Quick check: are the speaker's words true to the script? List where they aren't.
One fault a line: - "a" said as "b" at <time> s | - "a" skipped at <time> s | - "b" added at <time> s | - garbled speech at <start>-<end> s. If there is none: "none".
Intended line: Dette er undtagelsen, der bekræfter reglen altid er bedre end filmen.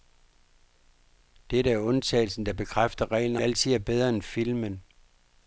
none